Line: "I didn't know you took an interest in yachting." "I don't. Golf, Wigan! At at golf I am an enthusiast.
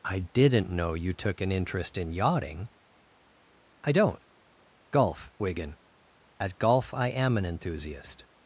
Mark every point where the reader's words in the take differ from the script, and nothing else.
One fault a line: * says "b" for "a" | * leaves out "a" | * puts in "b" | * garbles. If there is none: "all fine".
* leaves out "at"